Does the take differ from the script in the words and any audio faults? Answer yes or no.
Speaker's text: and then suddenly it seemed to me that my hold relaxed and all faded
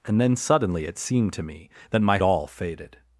yes